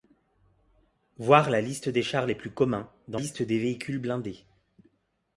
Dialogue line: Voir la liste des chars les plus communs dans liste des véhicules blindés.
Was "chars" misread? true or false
false